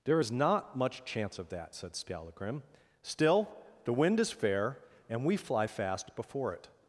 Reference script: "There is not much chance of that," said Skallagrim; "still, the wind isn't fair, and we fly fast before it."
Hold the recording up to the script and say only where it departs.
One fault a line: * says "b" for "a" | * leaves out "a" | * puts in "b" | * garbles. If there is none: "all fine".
* says "is" for "isn't"